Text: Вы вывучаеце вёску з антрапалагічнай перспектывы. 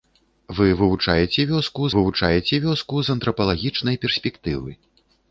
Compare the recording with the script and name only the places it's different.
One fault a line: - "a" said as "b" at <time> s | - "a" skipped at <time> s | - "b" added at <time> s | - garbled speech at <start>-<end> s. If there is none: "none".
- "вывучаеце вёску" added at 1.9 s